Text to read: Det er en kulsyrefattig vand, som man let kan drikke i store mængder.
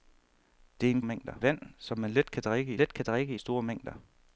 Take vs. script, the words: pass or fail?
fail